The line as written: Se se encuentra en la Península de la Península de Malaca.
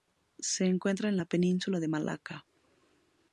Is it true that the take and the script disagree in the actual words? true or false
true